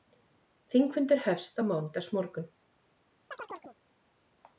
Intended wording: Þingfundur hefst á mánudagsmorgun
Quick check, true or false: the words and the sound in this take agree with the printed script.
false